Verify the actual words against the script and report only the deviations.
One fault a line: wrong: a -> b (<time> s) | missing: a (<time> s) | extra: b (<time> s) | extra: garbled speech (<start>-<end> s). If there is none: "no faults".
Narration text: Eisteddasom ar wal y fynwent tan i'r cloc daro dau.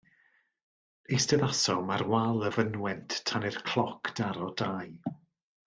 no faults